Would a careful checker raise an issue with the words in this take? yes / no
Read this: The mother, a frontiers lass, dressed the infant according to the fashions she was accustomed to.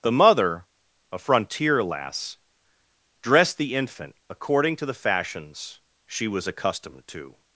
yes